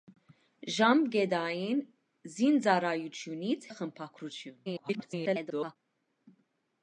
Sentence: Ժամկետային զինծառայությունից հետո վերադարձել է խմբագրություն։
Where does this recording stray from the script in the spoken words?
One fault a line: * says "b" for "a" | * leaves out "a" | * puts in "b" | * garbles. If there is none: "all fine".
* leaves out "հետո վերադարձել"
* garbles